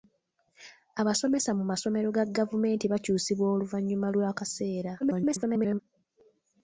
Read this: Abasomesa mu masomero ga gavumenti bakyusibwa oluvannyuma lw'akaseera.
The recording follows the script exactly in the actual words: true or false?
false